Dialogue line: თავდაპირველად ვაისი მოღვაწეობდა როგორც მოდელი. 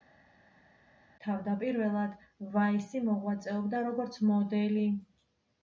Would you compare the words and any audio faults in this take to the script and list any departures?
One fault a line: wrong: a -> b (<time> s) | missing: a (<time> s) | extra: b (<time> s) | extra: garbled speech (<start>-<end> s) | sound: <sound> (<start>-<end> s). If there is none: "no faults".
no faults